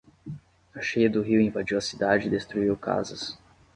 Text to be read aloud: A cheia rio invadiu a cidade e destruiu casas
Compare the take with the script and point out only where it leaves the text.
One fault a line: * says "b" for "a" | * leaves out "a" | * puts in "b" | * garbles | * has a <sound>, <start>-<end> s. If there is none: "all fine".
* puts in "do"